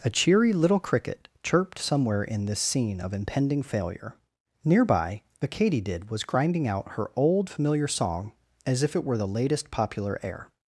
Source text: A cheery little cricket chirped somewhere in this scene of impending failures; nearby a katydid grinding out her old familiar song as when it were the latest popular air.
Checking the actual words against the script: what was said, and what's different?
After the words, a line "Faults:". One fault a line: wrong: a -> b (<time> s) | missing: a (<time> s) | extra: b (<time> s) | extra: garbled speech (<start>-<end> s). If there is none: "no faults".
A cheery little cricket chirped somewhere in this scene of impending failure; nearby a katydid was grinding out her old familiar song as if it were the latest popular air.
Faults:
wrong: failures -> failure (3.6 s)
extra: was (6.1 s)
wrong: when -> if (8.8 s)